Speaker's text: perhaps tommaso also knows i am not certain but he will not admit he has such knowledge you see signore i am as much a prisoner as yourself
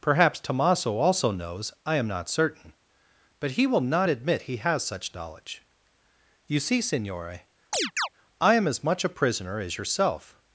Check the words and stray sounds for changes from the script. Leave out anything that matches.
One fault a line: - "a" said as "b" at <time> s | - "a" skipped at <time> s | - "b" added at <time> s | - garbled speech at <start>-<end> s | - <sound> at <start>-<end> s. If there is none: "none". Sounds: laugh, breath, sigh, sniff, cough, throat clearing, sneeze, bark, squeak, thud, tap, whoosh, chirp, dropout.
- chirp at 7.7-8.1 s